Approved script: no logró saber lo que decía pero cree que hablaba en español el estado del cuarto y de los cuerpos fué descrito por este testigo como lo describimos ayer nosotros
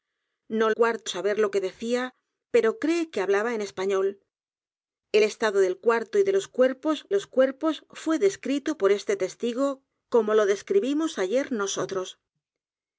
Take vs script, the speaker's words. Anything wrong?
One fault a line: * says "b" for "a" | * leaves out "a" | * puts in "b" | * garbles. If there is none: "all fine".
* says "cuarto" for "logró"
* puts in "los cuerpos"